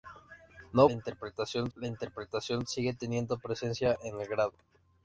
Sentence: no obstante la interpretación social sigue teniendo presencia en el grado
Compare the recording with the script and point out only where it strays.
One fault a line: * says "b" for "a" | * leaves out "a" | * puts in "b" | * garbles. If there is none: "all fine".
* says "interpretación" for "obstante"
* leaves out "social"